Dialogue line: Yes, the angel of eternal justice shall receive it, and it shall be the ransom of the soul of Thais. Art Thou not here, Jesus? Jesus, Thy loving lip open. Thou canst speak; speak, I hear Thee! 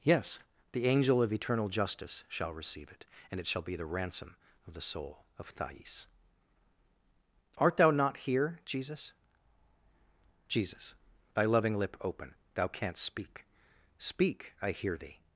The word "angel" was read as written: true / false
true